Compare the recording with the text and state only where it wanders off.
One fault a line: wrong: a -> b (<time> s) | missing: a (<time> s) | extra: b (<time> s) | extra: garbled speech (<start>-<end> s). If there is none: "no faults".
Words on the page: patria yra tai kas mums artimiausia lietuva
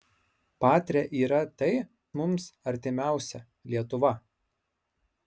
missing: kas (1.8 s)